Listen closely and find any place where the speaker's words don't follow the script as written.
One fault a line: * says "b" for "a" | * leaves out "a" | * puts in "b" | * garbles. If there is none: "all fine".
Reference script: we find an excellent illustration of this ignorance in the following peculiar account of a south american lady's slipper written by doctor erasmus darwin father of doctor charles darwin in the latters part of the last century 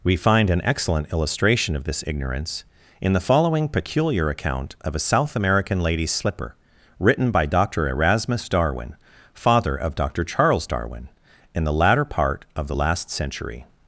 * says "latter" for "latters"